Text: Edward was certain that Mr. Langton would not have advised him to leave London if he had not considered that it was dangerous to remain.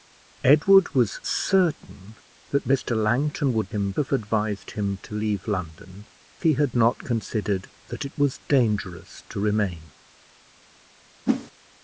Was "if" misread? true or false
true